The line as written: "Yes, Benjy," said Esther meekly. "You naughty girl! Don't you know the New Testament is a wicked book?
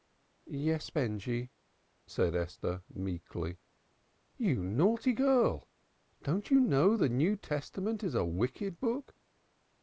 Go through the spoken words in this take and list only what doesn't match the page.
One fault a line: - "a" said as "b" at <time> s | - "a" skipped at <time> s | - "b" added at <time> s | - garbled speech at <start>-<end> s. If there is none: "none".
none